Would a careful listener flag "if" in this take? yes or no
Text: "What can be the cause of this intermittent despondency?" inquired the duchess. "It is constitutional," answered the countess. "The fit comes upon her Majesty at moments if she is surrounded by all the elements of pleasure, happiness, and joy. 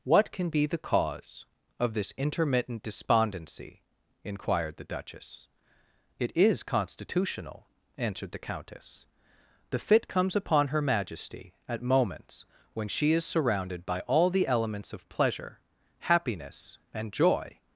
yes